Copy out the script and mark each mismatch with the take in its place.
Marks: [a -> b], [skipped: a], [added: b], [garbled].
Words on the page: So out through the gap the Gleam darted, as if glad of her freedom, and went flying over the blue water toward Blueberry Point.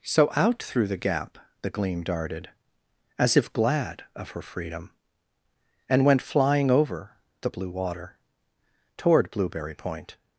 So out through the gap the Gleam darted, as if glad of her freedom, and went flying over the blue water toward Blueberry Point.